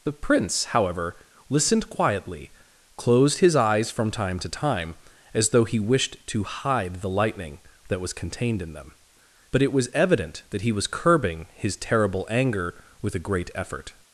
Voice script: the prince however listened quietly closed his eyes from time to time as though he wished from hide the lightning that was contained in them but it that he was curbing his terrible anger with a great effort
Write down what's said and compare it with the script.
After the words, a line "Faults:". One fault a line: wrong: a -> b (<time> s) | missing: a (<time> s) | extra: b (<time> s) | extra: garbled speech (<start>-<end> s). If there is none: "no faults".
the prince however listened quietly closed his eyes from time to time as though he wished to hide the lightning that was contained in them but it was evident that he was curbing his terrible anger with a great effort
Faults:
wrong: from -> to (6.3 s)
extra: was evident (9.7 s)